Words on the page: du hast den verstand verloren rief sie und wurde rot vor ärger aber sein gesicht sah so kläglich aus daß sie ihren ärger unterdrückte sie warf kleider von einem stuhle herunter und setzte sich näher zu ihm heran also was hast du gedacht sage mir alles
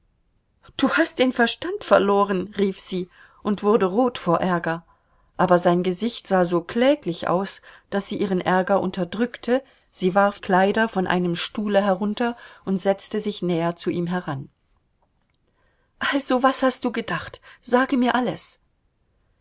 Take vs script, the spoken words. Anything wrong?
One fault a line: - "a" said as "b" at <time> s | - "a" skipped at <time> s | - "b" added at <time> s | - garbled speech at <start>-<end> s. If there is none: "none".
none